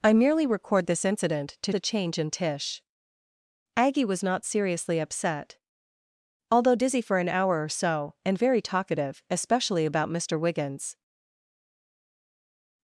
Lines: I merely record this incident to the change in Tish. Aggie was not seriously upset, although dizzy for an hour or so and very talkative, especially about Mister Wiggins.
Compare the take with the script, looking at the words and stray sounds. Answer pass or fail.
pass